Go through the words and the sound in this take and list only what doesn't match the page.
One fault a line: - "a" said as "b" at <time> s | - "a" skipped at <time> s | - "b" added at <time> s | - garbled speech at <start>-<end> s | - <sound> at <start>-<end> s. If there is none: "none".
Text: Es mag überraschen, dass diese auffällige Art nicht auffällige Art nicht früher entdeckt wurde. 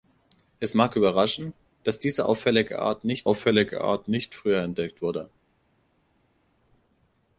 none